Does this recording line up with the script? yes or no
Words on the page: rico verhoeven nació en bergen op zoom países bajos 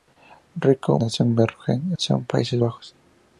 no